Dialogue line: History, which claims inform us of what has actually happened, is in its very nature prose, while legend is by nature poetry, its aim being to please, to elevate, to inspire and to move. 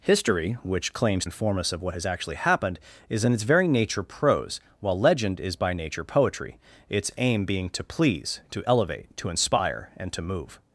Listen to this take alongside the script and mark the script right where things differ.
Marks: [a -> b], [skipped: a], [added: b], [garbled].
History, which claims inform us of what has actually happened, is in its very nature prose, while legend is by nature poetry, its aim being to please, to elevate, to inspire and to move.